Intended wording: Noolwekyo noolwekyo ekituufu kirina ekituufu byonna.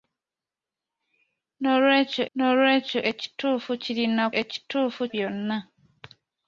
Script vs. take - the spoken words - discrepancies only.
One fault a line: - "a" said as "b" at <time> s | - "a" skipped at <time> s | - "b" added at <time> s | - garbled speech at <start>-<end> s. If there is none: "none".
none